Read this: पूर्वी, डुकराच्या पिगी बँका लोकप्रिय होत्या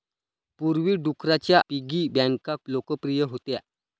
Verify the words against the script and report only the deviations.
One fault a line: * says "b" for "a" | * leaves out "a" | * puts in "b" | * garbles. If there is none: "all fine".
all fine